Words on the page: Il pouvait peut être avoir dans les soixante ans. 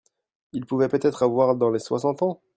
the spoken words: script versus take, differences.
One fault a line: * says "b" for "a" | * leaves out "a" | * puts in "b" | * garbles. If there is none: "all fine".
all fine